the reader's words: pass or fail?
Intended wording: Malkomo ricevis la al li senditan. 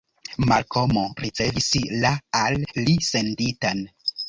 pass